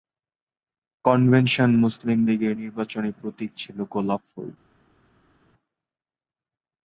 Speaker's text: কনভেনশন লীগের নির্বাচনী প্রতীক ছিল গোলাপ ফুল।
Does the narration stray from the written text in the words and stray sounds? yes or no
yes